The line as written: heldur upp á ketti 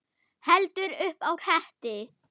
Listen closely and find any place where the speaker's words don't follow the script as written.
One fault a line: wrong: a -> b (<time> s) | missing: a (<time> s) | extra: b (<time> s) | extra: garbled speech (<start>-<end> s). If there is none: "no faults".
no faults